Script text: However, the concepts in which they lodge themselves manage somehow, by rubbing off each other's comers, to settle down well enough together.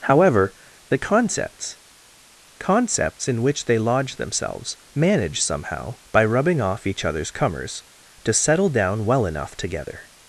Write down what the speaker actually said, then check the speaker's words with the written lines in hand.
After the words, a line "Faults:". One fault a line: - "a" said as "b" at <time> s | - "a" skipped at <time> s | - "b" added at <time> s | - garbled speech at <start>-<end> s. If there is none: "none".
However, the concepts concepts in which they lodge themselves manage somehow, by rubbing off each other's comers, to settle down well enough together.
Faults:
- "concepts" added at 2.6 s